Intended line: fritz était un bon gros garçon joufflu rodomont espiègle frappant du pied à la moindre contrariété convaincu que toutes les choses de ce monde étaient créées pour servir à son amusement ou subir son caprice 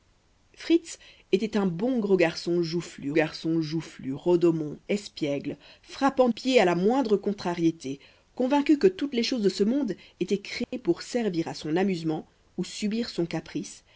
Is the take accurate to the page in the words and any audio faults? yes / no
no